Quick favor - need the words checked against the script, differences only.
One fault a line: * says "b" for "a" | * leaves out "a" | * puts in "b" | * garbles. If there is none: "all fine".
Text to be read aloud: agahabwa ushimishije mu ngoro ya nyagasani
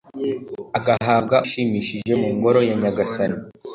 all fine